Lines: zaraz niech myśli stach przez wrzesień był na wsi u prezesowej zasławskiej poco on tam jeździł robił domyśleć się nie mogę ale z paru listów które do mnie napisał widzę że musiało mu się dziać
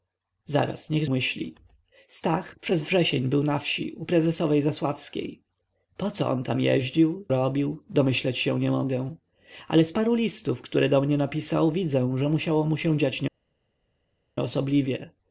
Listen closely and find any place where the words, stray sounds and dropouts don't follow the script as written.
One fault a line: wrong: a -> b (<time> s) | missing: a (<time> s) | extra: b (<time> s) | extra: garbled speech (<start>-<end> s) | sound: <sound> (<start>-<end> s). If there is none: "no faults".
no faults